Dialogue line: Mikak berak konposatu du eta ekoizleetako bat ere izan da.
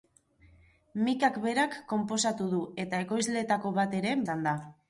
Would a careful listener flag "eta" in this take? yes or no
no